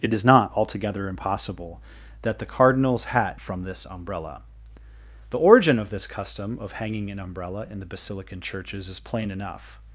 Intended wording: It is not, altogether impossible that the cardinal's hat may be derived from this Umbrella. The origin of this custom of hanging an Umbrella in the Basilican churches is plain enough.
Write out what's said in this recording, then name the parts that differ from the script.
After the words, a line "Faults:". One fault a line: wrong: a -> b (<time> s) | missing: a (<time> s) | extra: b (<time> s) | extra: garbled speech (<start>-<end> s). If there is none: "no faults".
It is not, altogether impossible that the cardinal's hat from this Umbrella. The origin of this custom of hanging an Umbrella in the Basilican churches is plain enough.
Faults:
missing: may be derived (3.4 s)